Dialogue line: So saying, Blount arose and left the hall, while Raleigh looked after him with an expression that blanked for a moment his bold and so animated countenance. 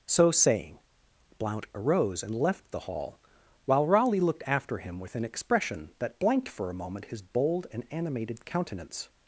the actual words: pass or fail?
fail